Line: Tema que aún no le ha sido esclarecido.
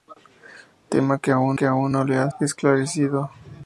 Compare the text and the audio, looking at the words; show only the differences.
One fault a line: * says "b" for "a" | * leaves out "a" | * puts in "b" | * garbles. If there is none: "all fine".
* puts in "que aún"
* leaves out "sido"